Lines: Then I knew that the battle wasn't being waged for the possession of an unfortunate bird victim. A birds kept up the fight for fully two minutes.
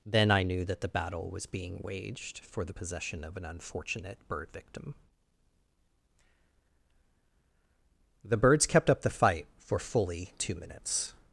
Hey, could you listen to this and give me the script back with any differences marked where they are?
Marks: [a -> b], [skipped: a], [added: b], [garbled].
Then I knew that the battle [wasn't -> was] being waged for the possession of an unfortunate bird victim. [A -> The] birds kept up the fight for fully two minutes.